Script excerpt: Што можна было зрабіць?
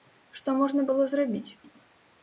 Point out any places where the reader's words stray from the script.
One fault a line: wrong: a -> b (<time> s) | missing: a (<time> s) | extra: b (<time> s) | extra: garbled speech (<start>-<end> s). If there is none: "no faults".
no faults